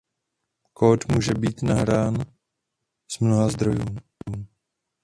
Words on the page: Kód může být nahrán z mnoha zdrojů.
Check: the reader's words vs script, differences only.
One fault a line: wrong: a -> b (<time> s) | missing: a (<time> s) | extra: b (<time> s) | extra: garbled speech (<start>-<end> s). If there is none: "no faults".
no faults